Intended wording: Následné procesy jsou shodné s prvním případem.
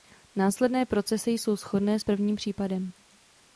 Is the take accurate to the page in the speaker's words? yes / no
yes